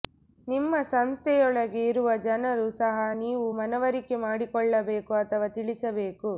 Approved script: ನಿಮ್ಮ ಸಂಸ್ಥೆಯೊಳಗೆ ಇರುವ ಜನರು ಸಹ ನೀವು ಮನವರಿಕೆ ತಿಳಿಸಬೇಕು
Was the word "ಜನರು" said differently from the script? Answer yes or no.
no